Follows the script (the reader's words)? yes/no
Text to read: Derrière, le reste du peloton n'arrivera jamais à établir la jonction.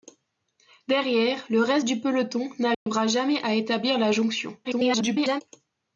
no